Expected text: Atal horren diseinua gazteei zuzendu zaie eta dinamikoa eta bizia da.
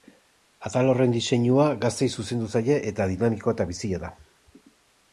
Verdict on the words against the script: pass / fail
pass